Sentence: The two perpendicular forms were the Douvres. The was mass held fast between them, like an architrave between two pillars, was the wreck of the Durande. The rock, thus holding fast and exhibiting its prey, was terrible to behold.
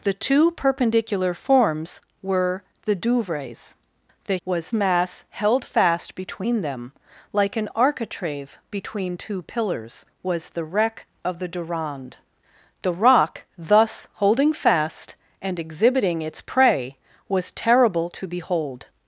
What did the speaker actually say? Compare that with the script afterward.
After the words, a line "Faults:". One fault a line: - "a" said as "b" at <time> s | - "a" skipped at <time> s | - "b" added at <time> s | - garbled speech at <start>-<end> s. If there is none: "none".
The two perpendicular forms were the Douvres. The was mass held fast between them, like an architrave between two pillars, was the wreck of the Durande. The rock, thus holding fast and exhibiting its prey, was terrible to behold.
Faults:
none